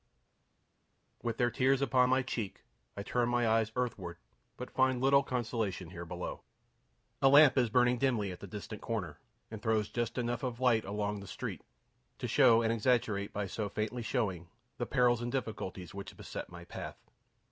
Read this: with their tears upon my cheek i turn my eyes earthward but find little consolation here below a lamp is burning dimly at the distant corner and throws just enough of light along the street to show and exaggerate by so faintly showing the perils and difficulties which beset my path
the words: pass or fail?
pass